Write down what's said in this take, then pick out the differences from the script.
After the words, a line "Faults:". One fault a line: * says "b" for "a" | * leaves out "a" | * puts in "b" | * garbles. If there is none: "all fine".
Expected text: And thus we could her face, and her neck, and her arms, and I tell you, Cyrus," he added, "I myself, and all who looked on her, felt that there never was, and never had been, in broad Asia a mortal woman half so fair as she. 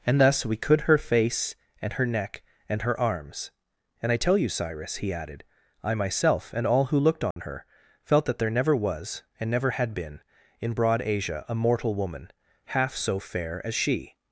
And thus we could her face, and her neck, and her arms, and I tell you, Cyrus," he added, "I myself, and all who looked on her, felt that there never was, and never had been, in broad Asia a mortal woman half so fair as she.
Faults:
all fine